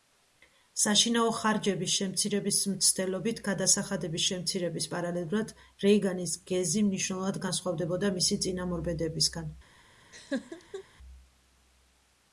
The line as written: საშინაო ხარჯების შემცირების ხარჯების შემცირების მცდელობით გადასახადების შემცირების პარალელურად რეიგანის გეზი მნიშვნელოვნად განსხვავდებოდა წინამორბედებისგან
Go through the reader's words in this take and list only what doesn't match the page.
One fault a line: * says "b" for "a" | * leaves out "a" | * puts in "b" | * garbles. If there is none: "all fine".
* leaves out "ხარჯების შემცირების"
* puts in "მისი"